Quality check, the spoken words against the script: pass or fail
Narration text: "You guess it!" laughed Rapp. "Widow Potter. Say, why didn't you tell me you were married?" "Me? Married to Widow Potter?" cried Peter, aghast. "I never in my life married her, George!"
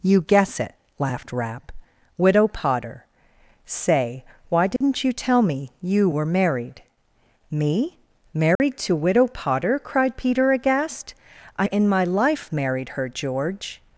fail